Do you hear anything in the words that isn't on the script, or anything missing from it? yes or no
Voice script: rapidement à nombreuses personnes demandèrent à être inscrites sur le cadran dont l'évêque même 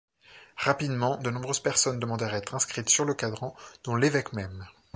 yes